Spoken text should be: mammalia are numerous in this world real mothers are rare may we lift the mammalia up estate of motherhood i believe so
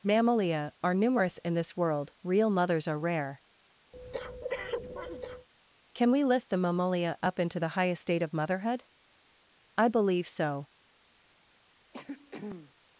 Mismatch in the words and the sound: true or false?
true